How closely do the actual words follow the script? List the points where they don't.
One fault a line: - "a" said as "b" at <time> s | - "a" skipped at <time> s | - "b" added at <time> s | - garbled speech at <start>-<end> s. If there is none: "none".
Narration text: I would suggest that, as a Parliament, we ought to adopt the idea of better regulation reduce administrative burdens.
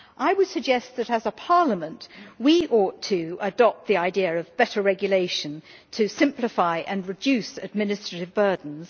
- "to simplify and" added at 5.9 s